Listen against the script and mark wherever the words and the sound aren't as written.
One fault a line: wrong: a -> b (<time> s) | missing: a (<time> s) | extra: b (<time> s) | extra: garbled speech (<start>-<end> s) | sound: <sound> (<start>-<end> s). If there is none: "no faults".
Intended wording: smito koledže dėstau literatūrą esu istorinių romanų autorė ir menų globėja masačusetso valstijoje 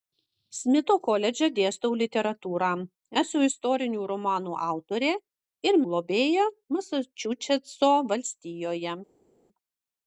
missing: menų (5.8 s)